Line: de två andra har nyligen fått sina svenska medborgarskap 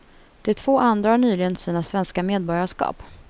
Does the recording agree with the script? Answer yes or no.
no